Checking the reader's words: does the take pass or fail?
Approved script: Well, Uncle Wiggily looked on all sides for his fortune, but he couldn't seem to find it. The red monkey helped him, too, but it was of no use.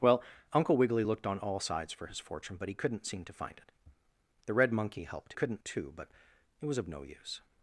fail